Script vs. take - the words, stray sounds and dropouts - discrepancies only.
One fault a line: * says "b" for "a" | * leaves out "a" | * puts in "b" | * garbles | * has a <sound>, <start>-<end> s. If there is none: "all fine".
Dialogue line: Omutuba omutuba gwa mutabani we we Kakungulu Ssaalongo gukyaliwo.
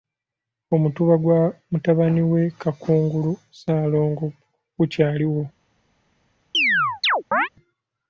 * leaves out "omutuba"
* leaves out "we"
* has a chirp, 6.5-7.5 s